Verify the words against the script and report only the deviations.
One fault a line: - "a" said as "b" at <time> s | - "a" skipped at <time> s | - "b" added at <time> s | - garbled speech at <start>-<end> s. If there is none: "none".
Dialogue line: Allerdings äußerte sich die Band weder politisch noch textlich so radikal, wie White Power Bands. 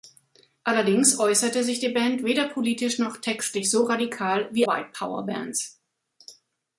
none